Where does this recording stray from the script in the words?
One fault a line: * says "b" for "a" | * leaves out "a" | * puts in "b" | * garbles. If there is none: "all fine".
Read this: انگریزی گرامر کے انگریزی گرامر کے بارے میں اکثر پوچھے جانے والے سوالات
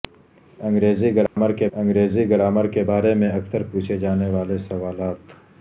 all fine